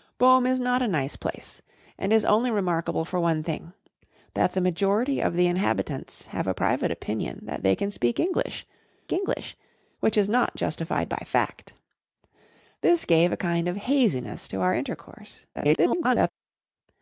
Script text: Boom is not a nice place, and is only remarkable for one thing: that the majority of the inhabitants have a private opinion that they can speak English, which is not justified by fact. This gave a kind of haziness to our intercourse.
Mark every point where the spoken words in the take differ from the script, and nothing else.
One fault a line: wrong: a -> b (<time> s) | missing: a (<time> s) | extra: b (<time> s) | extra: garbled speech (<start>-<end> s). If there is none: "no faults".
extra: English (9.1 s)
extra: garbled speech (15.5-16.3 s)